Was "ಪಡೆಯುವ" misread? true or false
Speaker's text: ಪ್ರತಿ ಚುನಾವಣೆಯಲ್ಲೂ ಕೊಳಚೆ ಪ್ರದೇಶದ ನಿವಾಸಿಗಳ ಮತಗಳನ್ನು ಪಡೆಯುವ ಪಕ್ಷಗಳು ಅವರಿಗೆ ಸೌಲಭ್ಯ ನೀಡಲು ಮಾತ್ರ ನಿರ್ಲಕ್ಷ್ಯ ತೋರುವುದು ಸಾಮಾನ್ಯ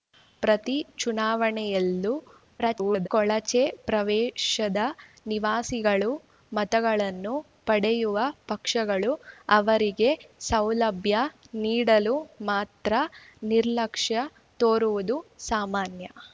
false